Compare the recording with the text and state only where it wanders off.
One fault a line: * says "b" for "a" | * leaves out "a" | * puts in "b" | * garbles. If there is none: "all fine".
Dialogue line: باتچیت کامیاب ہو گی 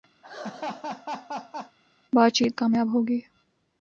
all fine